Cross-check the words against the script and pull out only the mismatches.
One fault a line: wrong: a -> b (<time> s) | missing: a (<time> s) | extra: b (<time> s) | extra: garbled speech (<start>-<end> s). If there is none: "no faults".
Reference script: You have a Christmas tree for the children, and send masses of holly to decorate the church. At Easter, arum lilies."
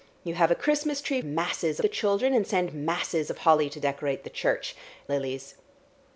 wrong: for -> masses (1.2 s)
missing: At Easter arum (4.7 s)